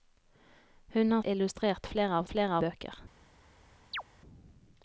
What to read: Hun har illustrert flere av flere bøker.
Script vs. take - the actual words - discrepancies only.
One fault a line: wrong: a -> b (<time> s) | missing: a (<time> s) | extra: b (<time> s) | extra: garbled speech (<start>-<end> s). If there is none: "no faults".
no faults